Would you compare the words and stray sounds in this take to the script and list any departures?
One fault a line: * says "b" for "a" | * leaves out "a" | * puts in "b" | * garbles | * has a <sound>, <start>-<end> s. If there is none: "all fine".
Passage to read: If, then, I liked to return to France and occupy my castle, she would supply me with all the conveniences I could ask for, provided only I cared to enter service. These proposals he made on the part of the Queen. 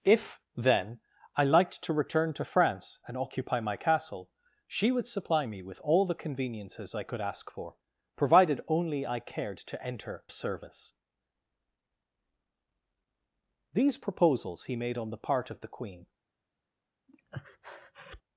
* has a breath, 17.1-18.2 s